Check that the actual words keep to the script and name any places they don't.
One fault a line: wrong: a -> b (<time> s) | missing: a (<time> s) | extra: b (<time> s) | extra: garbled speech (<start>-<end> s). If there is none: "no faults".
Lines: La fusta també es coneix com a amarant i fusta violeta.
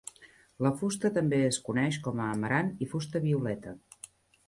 no faults